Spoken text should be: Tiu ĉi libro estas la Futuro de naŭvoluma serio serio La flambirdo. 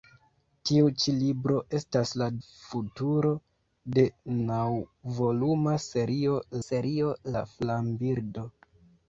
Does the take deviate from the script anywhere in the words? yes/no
no